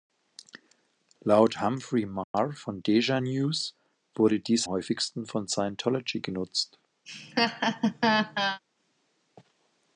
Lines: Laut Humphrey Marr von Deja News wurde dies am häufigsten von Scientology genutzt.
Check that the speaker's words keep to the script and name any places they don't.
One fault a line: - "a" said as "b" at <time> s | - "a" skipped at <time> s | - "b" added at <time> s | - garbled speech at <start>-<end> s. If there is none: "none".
- "am" skipped at 4.7 s